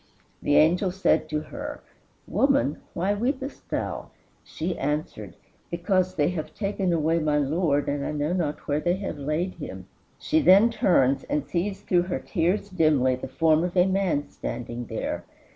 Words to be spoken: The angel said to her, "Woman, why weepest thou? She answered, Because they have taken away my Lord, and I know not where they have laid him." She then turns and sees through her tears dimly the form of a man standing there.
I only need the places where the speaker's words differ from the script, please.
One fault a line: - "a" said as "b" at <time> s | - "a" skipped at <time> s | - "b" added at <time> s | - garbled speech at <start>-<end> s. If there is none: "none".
none